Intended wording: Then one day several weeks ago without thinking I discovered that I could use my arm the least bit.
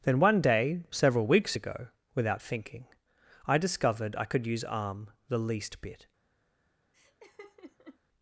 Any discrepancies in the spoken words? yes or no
yes